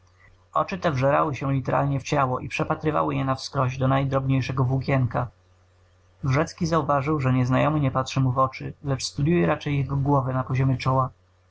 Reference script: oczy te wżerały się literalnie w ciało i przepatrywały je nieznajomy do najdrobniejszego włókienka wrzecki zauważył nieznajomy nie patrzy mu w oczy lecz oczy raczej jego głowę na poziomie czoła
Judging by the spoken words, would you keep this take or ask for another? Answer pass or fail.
fail